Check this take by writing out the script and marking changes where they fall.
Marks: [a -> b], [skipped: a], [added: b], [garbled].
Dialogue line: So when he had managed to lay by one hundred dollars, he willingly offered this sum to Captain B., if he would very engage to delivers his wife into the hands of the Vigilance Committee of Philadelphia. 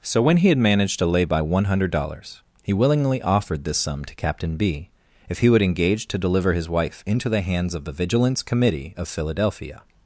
So when he had managed to lay by one hundred dollars, he willingly offered this sum to Captain B., if he would [skipped: very] engage to [delivers -> deliver] his wife into the hands of the Vigilance Committee of Philadelphia.